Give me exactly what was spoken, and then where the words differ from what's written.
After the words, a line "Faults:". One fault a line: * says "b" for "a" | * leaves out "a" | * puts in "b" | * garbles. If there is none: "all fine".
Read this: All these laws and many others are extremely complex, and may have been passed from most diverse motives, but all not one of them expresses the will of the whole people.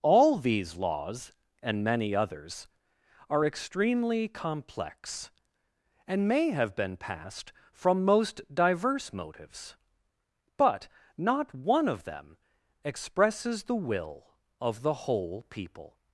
All these laws and many others are extremely complex, and may have been passed from most diverse motives, but not one of them expresses the will of the whole people.
Faults:
* leaves out "all"